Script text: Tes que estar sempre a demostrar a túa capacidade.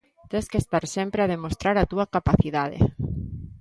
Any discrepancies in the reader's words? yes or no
no